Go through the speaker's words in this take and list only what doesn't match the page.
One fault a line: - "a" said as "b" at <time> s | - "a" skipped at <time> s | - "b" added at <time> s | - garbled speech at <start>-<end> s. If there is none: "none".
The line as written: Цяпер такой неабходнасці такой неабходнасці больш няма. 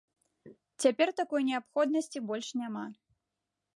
- "такой неабходнасці" skipped at 2.2 s